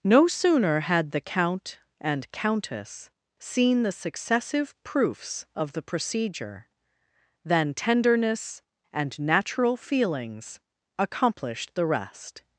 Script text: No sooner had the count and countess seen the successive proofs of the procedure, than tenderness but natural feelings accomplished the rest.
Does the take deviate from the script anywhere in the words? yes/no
yes